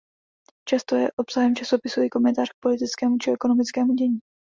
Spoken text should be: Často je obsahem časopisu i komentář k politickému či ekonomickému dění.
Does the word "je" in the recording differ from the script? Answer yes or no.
no